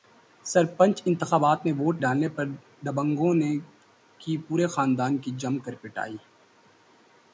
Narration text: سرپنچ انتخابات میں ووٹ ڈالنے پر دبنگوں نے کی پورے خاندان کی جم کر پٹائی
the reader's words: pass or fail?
pass